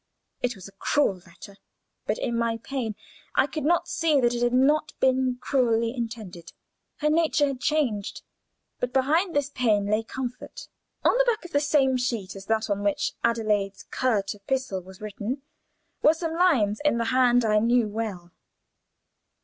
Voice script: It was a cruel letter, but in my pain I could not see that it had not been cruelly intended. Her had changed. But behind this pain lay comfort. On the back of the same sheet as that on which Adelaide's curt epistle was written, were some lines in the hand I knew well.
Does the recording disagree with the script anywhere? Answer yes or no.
yes